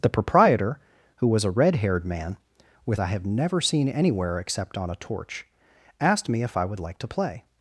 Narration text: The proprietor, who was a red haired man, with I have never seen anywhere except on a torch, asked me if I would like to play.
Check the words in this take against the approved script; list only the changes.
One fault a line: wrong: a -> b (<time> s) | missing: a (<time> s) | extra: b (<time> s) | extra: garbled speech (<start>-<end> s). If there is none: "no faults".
no faults